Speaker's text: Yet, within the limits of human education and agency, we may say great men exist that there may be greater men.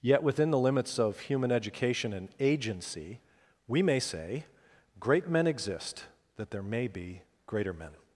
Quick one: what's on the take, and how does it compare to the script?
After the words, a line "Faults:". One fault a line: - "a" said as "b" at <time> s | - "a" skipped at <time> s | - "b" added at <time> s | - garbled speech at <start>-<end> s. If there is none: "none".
Yet, within the limits of human education and agency, we may say great men exist that there may be greater men.
Faults:
none